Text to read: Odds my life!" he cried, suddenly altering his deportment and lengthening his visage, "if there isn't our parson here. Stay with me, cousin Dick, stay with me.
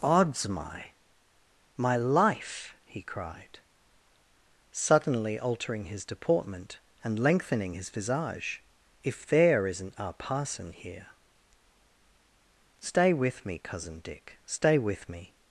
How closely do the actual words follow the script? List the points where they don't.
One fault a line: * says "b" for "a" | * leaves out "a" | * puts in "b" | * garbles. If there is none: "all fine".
* puts in "my"